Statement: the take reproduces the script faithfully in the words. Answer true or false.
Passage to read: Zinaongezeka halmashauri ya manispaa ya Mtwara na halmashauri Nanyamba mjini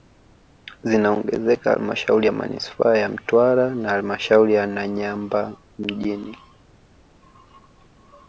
false